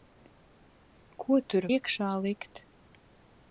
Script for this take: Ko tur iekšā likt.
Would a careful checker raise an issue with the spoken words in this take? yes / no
no